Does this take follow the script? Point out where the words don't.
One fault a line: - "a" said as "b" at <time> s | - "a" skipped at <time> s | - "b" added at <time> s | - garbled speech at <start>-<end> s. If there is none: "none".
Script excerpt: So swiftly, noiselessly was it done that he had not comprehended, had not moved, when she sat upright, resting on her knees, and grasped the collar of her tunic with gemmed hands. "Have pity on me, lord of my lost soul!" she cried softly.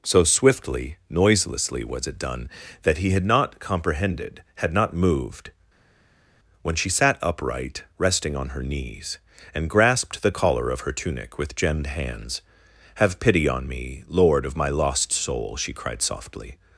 none